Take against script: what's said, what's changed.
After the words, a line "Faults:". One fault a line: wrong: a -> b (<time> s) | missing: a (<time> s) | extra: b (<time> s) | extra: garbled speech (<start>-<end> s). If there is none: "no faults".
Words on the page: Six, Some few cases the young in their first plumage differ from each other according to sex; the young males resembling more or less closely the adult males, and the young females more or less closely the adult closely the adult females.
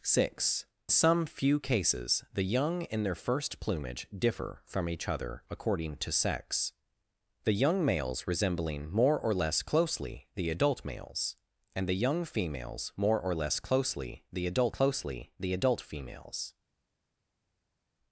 Six, Some few cases the young in their first plumage differ from each other according to sex; the young males resembling more or less closely the adult males, and the young females more or less closely the adult closely the adult females.
Faults:
no faults